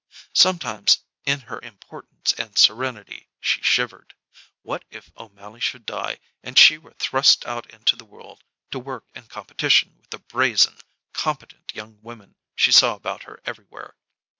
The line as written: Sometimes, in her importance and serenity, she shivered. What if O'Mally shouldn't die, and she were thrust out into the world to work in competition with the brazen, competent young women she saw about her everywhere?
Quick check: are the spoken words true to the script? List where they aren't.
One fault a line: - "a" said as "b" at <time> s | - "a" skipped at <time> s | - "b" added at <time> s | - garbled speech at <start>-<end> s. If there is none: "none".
- "shouldn't" said as "should" at 5.6 s